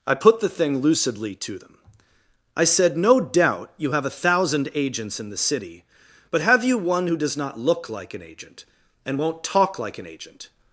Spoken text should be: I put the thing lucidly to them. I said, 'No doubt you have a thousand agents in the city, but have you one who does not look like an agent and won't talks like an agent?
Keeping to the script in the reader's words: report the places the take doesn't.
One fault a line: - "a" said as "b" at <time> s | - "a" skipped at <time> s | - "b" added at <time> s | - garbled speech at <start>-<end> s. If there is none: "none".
- "talks" said as "talk" at 9.4 s